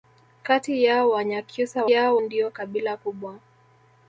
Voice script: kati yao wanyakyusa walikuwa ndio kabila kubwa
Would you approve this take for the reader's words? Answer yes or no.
no